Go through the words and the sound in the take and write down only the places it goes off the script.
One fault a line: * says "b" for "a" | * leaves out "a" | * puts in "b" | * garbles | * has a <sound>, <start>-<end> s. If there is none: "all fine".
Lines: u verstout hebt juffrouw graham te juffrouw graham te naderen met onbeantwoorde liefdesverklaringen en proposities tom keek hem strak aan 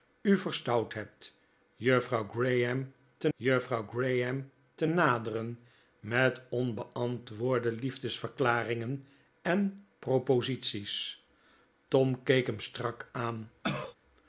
* has a cough, 13.6-14.0 s